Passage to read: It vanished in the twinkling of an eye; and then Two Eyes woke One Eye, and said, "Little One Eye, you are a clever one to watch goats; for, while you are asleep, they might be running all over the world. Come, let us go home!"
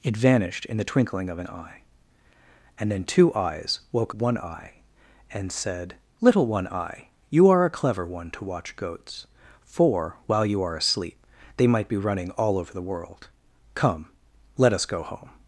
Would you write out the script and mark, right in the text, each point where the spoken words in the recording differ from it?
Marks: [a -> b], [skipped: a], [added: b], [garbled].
It vanished in the twinkling of an eye; and then Two Eyes woke One Eye, and said, "Little One Eye, you are a clever one to watch goats; for, while you are asleep, they might be running all over the world. Come, let us go home!"